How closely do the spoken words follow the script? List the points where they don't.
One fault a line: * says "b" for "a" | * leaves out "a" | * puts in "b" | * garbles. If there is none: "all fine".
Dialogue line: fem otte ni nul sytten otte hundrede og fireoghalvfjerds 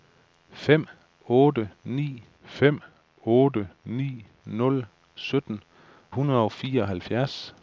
* puts in "fem otte ni"
* leaves out "otte"